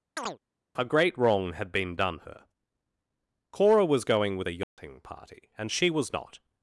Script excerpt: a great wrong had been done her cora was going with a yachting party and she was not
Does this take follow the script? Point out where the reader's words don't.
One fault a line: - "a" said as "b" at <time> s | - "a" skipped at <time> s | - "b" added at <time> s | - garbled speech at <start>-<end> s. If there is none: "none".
none